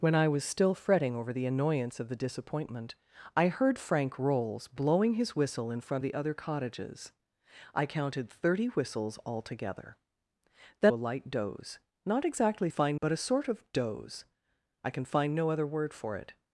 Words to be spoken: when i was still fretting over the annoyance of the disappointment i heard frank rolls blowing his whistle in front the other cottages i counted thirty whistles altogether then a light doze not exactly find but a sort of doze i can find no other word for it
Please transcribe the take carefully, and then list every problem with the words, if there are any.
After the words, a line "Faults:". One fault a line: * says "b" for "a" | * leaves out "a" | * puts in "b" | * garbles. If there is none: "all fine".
when i was still fretting over the annoyance of the disappointment i heard frank rolls blowing his whistle in front the other cottages i counted thirty whistles altogether then a light doze not exactly find but a sort of doze i can find no other word for it
Faults:
all fine